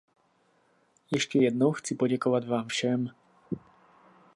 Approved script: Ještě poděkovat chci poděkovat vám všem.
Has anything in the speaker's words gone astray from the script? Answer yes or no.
yes